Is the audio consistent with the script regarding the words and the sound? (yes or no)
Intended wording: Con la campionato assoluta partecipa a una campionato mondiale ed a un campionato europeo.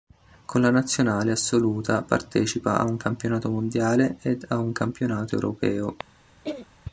no